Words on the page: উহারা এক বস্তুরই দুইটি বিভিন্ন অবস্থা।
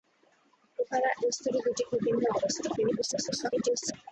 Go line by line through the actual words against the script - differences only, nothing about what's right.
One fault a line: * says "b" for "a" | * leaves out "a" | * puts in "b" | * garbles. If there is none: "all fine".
* leaves out "এক"
* garbles